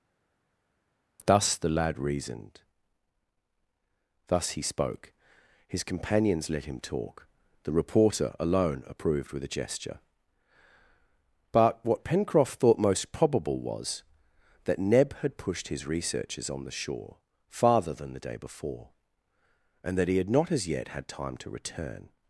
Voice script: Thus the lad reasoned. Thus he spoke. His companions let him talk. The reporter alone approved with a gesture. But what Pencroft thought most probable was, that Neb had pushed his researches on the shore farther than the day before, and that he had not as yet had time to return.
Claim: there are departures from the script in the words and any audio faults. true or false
false